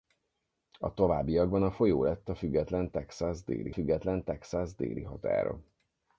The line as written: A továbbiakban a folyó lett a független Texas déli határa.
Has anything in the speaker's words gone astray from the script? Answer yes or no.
yes